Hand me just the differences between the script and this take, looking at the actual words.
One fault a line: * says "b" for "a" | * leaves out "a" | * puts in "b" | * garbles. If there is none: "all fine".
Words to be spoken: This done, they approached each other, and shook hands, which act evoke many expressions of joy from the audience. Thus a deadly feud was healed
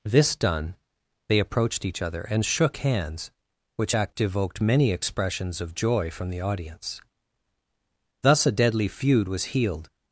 * says "evoked" for "evoke"